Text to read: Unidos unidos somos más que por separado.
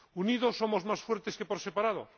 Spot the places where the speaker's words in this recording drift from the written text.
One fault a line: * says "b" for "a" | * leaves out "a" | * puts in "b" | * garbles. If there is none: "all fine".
* leaves out "unidos"
* puts in "fuertes"